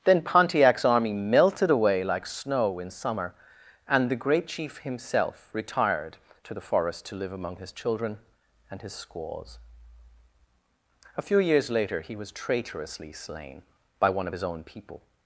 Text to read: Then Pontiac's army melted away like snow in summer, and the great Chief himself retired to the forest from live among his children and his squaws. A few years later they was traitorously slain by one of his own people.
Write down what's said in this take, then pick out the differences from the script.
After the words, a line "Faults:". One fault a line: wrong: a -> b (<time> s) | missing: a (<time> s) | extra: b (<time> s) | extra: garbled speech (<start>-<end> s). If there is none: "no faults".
Then Pontiac's army melted away like snow in summer, and the great Chief himself retired to the forest to live among his children and his squaws. A few years later he was traitorously slain by one of his own people.
Faults:
wrong: from -> to (7.1 s)
wrong: they -> he (12.0 s)